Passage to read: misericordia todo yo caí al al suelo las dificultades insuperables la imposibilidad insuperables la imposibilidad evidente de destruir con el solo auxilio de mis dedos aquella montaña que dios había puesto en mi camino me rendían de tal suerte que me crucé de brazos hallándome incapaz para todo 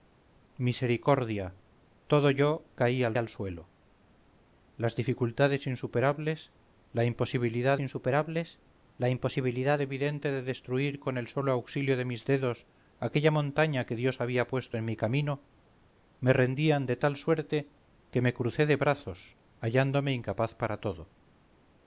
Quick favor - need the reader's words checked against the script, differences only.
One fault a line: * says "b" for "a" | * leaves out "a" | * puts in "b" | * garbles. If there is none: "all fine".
all fine